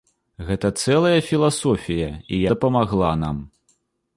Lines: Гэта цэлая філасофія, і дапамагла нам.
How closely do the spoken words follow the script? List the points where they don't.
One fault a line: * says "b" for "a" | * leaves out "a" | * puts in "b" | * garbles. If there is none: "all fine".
all fine